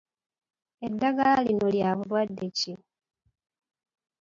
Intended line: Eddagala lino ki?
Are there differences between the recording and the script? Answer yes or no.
yes